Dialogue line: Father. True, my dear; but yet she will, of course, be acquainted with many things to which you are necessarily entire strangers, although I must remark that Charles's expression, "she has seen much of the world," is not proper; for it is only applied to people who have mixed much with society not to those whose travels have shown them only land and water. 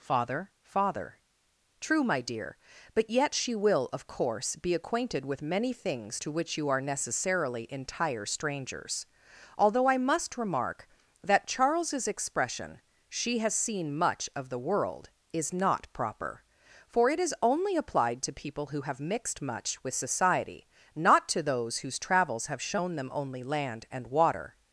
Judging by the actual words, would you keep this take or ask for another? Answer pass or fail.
fail